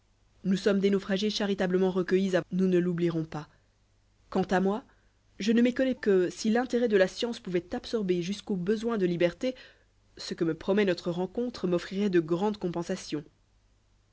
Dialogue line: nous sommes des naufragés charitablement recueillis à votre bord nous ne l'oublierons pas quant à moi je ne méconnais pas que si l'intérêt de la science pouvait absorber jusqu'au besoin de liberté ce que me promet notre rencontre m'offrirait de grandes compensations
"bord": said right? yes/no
no